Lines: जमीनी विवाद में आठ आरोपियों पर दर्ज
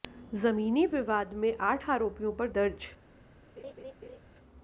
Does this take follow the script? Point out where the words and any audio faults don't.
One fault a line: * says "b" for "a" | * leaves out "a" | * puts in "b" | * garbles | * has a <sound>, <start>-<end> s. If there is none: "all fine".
* has a laugh, 3.6-4.2 s